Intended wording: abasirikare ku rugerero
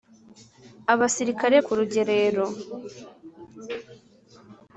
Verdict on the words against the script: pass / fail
pass